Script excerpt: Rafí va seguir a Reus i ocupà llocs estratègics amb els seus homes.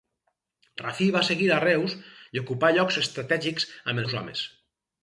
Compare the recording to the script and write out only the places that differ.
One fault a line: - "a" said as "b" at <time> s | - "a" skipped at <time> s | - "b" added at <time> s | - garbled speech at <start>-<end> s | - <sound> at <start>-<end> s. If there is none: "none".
- "els" skipped at 4.1 s